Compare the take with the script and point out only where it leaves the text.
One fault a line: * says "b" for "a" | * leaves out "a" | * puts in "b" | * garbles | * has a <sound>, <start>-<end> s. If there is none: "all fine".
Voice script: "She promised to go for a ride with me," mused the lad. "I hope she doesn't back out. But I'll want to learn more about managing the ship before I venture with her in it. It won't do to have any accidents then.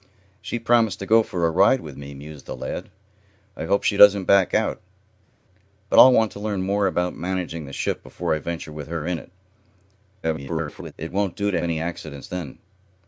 * garbles
* leaves out "have"